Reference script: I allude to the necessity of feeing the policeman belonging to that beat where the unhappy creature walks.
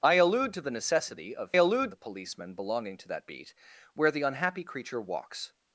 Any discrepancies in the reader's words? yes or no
yes